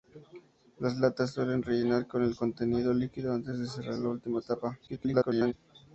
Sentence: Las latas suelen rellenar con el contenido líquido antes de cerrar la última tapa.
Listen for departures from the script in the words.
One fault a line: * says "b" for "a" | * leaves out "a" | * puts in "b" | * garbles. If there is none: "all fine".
* garbles